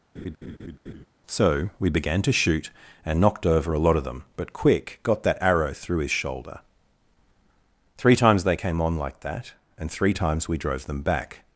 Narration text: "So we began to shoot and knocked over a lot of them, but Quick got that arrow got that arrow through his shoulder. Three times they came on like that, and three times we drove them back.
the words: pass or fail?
fail